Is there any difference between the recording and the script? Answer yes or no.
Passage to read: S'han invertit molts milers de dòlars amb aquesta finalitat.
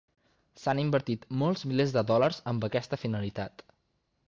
no